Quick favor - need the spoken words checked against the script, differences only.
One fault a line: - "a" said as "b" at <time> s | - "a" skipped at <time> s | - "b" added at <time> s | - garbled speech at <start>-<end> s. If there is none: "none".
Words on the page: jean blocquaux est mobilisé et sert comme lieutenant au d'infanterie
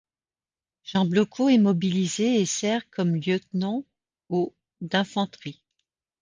none